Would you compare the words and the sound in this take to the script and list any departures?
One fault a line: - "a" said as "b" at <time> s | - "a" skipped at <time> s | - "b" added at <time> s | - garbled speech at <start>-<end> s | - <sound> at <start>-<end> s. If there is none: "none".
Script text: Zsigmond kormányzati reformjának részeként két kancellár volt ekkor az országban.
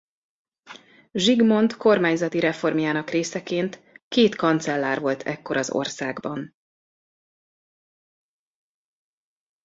none